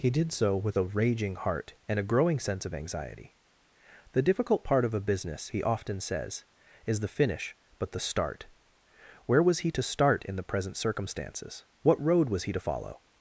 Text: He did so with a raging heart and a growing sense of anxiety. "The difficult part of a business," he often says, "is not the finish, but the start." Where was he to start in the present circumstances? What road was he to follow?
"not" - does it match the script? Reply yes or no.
no